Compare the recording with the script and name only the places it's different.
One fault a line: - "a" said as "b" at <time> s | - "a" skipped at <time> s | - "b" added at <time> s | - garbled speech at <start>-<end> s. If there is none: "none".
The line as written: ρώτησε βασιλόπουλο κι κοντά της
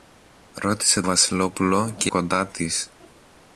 none